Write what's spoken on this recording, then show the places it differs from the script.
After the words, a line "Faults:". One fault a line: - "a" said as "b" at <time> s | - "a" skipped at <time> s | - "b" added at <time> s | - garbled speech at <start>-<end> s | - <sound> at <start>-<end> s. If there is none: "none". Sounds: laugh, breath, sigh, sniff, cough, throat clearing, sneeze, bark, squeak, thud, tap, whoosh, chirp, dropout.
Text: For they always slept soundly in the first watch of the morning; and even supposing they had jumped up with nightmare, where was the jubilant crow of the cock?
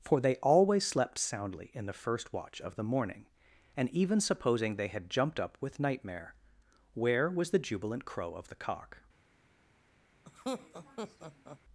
For they always slept soundly in the first watch of the morning; and even supposing they had jumped up with nightmare, where was the jubilant crow of the cock?
Faults:
- laugh at 10.2-11.6 s